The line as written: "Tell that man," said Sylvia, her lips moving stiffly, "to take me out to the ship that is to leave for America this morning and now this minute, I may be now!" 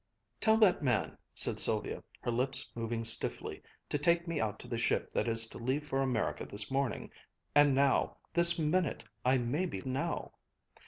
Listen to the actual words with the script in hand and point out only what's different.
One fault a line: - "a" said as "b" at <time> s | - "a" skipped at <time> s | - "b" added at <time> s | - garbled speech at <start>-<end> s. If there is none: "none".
none